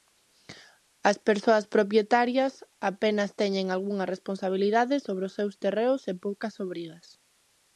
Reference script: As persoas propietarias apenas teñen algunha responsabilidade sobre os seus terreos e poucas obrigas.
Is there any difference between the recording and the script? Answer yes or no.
no